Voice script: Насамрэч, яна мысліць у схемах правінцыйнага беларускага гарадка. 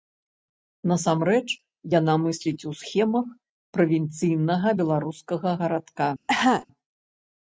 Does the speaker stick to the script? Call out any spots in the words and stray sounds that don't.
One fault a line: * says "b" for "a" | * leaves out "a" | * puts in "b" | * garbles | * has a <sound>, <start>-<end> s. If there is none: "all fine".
* has a cough, 6.3-6.7 s